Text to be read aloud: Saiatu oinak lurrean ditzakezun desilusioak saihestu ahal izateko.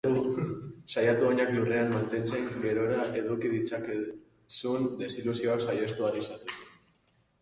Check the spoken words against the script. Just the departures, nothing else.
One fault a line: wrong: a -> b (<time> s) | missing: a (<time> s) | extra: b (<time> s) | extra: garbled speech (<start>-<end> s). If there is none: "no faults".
extra: mantentzen gerora eduki (1.9 s)